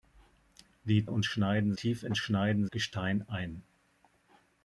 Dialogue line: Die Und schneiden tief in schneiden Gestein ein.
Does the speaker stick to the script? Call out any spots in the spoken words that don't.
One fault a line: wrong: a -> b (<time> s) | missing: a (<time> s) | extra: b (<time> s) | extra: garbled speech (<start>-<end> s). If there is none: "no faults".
no faults